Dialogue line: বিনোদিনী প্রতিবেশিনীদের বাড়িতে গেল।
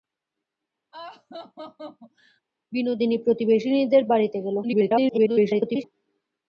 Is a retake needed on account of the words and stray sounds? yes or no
yes